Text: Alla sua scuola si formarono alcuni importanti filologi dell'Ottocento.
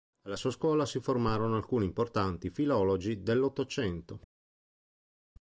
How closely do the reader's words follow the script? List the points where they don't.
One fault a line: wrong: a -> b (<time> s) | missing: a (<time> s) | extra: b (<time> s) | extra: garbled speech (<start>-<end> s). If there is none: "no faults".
no faults